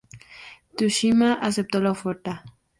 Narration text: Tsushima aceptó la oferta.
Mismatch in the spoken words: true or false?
false